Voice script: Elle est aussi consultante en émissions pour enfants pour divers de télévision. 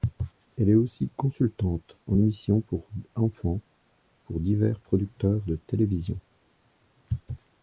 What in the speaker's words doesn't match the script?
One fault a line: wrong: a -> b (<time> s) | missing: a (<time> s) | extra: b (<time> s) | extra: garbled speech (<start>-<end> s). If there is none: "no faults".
extra: producteurs (4.8 s)